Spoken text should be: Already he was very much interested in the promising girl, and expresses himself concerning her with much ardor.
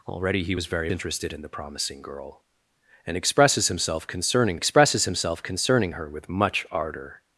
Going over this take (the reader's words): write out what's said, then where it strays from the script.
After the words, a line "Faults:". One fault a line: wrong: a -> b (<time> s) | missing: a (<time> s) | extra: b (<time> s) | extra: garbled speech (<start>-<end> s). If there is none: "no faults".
Already he was very interested in the promising girl, and expresses himself concerning expresses himself concerning her with much ardor.
Faults:
missing: much (0.9 s)
extra: expresses himself concerning (4.6 s)